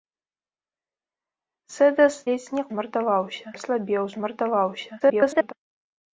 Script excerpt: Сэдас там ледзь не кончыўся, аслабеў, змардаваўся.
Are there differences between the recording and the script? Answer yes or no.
yes